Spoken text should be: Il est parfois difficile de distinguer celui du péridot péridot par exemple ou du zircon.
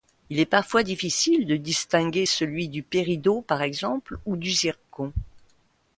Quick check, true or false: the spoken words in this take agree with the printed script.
false